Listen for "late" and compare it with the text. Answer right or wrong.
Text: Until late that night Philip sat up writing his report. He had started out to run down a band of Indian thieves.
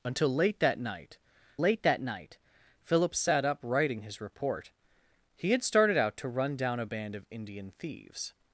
right